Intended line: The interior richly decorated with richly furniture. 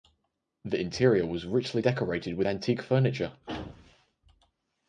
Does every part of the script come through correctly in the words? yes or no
no